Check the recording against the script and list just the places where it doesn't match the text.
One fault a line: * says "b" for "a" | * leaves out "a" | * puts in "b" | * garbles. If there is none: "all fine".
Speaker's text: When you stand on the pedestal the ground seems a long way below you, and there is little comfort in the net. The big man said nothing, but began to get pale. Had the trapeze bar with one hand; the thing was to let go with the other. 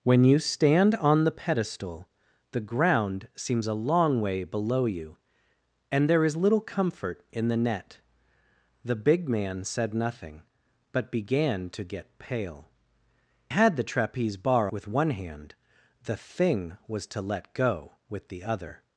all fine